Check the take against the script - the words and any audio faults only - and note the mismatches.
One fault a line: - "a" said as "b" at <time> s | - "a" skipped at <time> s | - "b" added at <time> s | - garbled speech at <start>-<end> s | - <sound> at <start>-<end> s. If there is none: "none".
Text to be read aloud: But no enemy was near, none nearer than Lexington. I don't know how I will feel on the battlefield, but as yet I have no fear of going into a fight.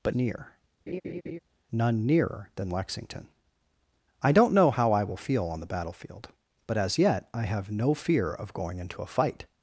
- "no enemy was" skipped at 0.1 s
- laugh at 0.9-1.4 s